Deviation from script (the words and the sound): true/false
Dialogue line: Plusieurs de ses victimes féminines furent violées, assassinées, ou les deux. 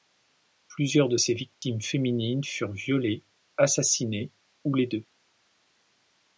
true